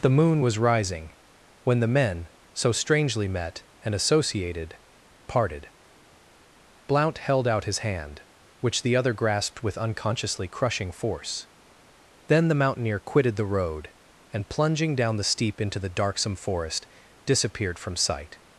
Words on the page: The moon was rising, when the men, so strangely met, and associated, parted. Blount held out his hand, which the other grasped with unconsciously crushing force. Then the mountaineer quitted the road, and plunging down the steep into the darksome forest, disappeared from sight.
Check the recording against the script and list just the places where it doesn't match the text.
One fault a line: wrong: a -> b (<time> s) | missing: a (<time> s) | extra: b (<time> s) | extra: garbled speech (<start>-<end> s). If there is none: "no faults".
no faults